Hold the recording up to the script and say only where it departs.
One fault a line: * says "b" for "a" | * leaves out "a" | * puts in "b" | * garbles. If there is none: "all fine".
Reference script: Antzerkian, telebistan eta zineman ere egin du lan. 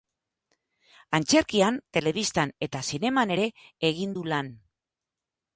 all fine